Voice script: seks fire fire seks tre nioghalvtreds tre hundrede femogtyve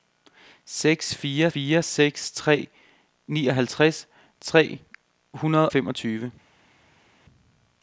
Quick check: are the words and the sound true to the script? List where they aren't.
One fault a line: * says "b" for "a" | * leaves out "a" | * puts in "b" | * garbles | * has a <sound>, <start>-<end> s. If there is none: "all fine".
all fine